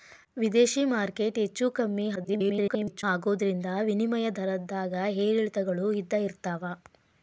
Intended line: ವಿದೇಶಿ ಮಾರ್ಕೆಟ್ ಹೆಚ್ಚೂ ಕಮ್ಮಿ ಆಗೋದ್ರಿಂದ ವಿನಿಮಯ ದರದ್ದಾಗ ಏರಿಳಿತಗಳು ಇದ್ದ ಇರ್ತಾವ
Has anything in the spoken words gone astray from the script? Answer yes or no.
yes